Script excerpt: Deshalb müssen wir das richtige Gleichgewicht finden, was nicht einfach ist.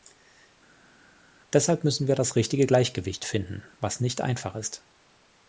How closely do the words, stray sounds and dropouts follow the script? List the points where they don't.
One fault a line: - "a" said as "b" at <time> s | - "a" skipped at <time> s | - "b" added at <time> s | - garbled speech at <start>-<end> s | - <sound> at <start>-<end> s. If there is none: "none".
none